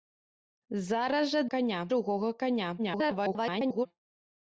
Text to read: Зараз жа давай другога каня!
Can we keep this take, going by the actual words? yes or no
no